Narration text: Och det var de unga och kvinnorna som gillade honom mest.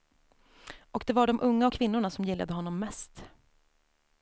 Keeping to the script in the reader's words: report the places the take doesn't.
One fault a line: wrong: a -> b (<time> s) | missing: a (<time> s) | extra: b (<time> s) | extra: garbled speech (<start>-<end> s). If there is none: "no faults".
no faults